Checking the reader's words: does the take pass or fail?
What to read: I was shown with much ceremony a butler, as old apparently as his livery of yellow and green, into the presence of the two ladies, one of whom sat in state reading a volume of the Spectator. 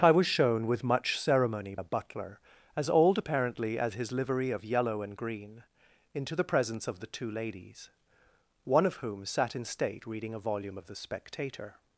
pass